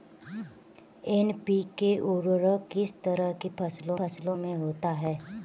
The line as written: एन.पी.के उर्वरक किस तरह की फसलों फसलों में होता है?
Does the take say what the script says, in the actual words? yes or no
yes